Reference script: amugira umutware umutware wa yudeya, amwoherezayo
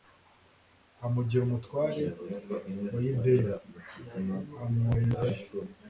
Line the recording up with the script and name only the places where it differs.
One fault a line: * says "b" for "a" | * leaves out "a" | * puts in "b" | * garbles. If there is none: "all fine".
* leaves out "umutware"